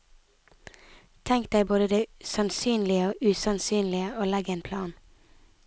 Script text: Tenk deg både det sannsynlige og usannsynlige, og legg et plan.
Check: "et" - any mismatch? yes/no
yes